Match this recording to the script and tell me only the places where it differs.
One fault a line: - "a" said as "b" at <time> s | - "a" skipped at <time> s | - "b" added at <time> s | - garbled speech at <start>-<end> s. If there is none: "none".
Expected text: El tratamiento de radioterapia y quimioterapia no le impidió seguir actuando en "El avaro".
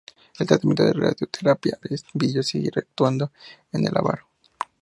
- "y quimioterapia no" skipped at 1.8 s